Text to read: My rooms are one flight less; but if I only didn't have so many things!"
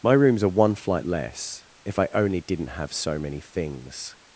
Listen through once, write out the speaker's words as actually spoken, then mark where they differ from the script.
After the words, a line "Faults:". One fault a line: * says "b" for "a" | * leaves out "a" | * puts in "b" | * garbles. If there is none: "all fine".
My rooms are one flight less; if I only didn't have so many things!"
Faults:
* leaves out "but"